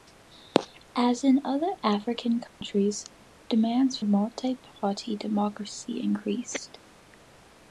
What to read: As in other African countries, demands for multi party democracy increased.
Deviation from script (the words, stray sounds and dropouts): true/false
true